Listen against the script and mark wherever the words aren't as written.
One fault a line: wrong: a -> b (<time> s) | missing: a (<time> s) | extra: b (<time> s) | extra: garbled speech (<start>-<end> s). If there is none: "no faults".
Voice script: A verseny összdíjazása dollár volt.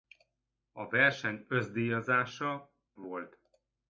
missing: dollár (2.7 s)